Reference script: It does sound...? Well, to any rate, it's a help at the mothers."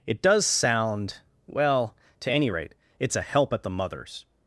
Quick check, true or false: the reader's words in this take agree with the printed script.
true